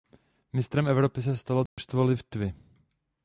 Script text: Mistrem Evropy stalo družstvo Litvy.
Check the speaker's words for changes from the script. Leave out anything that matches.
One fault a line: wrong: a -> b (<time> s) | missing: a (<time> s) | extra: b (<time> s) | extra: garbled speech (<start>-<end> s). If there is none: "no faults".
extra: se (1.2 s)